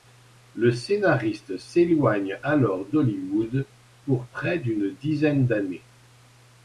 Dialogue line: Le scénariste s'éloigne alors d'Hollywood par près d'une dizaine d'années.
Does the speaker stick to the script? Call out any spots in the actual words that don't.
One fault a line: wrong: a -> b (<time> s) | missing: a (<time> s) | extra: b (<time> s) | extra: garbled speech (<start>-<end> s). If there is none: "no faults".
wrong: par -> pour (4.1 s)